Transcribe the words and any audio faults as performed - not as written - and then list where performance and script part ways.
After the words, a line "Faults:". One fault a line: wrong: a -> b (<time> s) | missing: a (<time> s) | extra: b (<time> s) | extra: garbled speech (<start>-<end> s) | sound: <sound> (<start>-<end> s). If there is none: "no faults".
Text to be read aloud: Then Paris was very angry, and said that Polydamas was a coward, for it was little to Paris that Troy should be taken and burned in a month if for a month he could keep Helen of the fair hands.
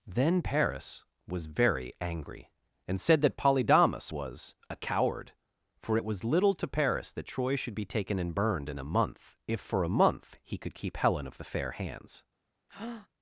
Then Paris was very angry, and said that Polydamas was a coward, for it was little to Paris that Troy should be taken and burned in a month if for a month he could keep Helen of the fair hands.
Faults:
sound: breath (12.7-13.1 s)